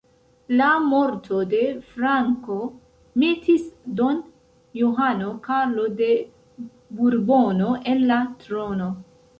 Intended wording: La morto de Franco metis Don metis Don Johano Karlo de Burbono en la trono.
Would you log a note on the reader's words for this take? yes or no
yes